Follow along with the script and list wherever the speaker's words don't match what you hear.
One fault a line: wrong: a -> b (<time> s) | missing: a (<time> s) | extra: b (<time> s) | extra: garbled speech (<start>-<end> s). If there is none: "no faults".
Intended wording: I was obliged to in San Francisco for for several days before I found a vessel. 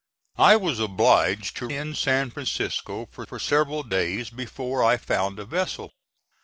no faults